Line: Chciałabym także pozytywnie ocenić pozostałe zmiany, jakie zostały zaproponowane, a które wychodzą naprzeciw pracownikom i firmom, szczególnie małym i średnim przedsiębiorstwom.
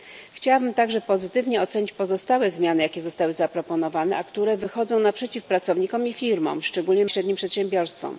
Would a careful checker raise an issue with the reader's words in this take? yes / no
yes